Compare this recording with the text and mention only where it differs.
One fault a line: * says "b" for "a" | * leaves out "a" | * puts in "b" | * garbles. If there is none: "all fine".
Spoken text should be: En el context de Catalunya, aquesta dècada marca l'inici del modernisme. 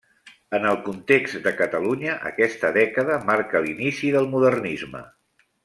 all fine